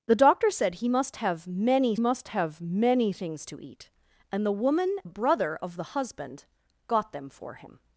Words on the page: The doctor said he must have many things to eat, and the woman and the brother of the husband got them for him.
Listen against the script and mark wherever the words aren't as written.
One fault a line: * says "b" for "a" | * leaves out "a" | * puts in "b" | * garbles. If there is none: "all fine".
* puts in "must have many"
* leaves out "and"